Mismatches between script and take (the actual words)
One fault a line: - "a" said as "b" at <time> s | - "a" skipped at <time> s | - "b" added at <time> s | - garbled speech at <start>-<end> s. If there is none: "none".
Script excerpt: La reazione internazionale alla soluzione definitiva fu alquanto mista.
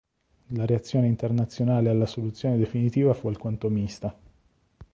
none